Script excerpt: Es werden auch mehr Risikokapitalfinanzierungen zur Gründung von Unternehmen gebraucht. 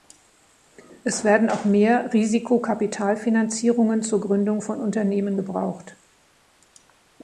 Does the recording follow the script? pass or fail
pass